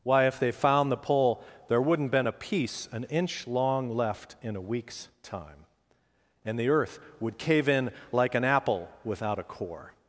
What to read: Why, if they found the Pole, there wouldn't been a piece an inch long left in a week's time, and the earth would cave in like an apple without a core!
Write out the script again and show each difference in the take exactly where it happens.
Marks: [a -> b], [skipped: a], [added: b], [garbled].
Why, if they found the Pole, there wouldn't been a piece an inch long left in a week's time, and the earth would cave in like an apple without a core!